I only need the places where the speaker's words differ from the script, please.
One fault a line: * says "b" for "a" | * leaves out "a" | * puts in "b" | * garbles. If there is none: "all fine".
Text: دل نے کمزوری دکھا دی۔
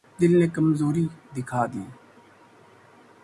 all fine